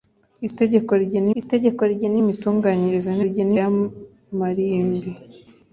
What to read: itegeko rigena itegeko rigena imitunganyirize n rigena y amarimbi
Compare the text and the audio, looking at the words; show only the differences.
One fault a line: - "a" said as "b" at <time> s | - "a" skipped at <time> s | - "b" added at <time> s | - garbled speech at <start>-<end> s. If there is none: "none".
none